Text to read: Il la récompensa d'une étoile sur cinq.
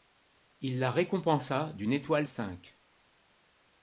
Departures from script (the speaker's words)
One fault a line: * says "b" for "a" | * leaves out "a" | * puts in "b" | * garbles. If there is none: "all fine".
* leaves out "sur"